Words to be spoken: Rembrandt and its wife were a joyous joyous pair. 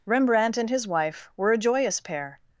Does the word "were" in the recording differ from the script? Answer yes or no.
no